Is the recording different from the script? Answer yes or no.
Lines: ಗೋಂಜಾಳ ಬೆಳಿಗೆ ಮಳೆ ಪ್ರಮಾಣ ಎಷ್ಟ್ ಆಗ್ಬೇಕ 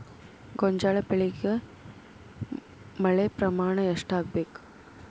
no